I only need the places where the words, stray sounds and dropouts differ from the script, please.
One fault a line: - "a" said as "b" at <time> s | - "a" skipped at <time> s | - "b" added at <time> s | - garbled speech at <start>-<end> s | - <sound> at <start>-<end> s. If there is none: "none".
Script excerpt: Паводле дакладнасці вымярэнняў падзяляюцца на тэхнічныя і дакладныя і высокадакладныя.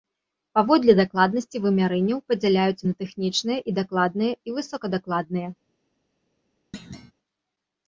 - thud at 6.7-7.1 s